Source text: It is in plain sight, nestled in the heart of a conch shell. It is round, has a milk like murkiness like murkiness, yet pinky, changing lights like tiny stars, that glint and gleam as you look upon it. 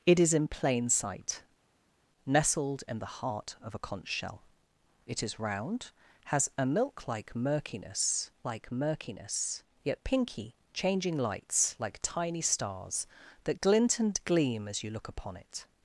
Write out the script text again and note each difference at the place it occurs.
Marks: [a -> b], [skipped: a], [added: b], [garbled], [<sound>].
It is in plain sight, nestled in the heart of a conch shell. It is round, has a milk like murkiness like murkiness, yet pinky, changing lights like tiny stars, that glint and gleam as you look upon it.